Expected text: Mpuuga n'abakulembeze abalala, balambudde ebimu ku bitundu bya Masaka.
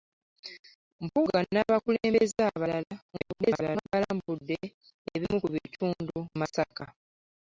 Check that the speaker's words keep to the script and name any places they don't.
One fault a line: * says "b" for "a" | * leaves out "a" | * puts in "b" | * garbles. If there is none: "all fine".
* garbles
* leaves out "bya"